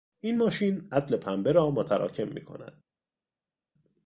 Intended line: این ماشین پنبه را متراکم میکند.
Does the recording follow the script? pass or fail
fail